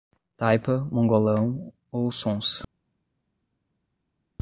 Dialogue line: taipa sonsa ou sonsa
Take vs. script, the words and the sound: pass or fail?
fail